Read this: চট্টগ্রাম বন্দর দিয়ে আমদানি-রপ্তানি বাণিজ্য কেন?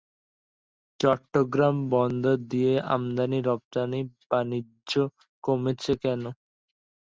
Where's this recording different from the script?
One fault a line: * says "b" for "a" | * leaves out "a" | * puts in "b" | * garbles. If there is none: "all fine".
* puts in "কমেছে"